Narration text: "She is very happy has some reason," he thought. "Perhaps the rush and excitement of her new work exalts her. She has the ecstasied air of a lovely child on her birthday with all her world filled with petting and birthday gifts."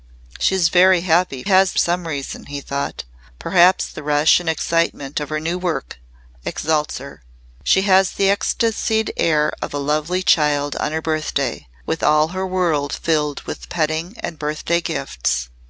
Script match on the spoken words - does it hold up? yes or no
yes